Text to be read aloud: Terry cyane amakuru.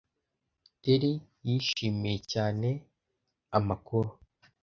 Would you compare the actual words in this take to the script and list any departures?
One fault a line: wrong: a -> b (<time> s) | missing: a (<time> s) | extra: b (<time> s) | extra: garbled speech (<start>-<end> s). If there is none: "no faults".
extra: yishimiye (1.5 s)